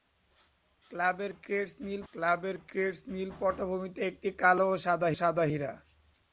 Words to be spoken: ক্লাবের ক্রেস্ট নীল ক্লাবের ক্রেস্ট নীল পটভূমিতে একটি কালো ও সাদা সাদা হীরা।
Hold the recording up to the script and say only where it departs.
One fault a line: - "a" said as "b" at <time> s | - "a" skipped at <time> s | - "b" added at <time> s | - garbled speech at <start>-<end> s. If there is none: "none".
none